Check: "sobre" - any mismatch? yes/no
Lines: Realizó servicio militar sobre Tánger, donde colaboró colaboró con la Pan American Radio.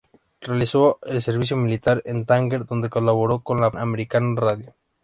yes